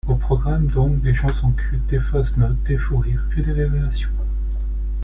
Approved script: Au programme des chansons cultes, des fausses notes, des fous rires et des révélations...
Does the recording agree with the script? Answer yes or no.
no